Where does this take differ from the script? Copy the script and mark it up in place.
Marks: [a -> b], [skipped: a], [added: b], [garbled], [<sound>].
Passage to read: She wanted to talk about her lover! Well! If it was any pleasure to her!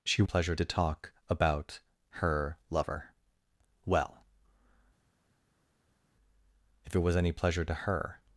She [wanted -> pleasure] to talk about her lover! Well! If it was any pleasure to her!